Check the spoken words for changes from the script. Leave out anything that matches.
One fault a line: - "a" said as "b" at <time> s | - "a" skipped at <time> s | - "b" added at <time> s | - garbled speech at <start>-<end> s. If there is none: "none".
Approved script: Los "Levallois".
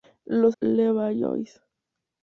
none